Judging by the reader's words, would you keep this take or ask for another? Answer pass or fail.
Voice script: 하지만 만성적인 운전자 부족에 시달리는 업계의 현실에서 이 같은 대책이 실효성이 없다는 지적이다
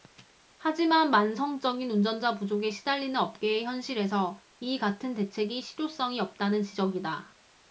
pass